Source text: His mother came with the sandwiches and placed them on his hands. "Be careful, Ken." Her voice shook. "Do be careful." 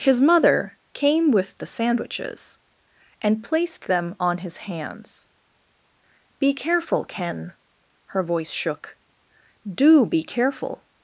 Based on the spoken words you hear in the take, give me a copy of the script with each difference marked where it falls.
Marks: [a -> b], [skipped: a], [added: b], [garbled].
His mother came with the sandwiches and placed them on his hands. "Be careful, Ken." Her voice shook. "Do be careful."